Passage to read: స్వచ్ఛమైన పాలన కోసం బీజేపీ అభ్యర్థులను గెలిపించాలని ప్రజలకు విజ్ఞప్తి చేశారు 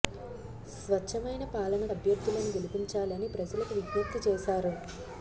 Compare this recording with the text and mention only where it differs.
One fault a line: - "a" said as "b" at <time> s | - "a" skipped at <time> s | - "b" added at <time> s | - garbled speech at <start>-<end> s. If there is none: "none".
- "కోసం బీజేపీ" skipped at 1.8 s